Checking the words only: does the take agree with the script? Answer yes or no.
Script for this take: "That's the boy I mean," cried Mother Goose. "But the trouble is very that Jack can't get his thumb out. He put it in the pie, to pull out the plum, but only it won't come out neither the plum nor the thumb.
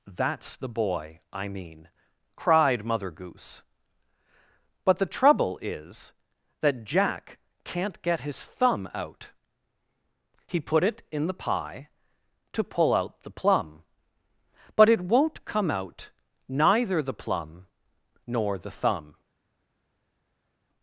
no